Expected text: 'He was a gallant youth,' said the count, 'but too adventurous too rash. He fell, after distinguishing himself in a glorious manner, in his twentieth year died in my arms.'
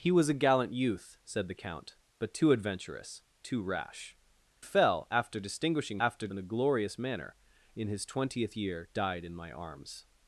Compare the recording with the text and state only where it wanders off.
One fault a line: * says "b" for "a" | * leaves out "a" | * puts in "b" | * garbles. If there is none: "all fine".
* leaves out "He"
* says "after" for "himself"